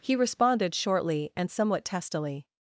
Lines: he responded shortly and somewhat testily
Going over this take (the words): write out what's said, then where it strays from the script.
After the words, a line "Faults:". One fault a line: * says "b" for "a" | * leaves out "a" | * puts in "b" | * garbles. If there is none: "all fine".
he responded shortly and somewhat testily
Faults:
all fine